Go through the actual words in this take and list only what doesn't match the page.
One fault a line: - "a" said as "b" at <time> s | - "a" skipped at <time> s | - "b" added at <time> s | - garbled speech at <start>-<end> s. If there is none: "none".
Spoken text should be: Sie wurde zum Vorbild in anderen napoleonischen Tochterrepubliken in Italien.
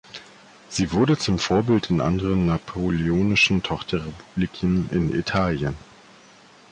none